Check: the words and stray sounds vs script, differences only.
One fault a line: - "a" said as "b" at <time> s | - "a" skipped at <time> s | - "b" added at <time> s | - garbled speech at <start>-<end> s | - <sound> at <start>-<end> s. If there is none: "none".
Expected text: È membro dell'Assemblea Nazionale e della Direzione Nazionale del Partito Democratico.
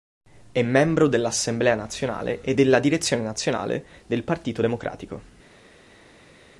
none